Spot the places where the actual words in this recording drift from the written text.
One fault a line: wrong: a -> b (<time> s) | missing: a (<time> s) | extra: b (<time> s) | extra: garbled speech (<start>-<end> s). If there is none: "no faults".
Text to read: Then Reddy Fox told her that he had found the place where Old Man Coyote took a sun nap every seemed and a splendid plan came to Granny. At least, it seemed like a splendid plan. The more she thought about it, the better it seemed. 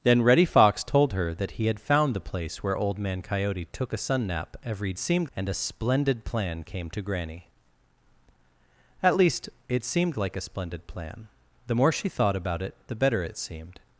no faults